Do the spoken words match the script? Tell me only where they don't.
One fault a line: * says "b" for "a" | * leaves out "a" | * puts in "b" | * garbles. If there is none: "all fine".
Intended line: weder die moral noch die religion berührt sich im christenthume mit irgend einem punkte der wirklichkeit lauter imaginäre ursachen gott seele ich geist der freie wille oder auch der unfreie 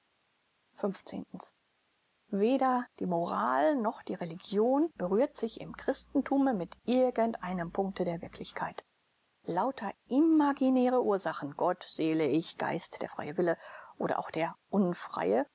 all fine